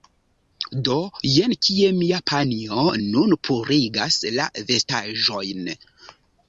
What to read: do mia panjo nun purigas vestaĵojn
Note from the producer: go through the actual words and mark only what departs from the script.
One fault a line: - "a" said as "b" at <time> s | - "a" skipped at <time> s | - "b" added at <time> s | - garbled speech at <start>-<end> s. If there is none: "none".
- "jen kie" added at 1.3 s
- "la" added at 4.4 s